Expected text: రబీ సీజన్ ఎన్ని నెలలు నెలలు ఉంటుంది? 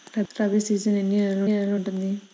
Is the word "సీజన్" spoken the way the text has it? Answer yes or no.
yes